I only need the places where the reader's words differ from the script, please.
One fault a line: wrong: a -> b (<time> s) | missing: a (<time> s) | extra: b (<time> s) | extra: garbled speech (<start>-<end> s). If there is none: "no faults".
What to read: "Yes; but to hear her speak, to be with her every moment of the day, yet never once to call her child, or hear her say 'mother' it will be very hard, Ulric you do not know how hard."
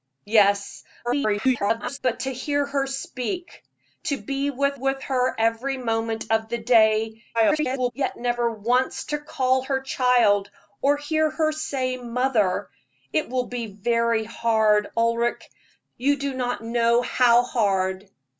extra: garbled speech (1.0-2.0 s)
extra: with (4.7 s)
extra: garbled speech (7.3-7.9 s)